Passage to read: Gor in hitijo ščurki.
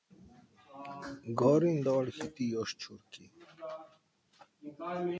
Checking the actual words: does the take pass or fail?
fail